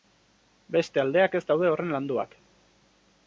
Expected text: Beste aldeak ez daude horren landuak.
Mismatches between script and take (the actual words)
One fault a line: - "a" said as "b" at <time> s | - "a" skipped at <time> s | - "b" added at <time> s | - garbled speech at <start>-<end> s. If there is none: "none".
none